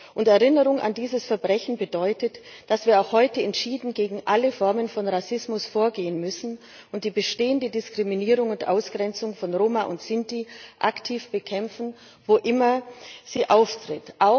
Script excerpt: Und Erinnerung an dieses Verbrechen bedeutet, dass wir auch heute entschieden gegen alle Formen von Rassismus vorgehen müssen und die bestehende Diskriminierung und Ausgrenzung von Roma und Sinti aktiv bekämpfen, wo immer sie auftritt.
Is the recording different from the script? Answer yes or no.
no